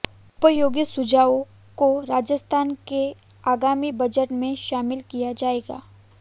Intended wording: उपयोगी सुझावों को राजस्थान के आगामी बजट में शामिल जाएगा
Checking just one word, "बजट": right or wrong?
right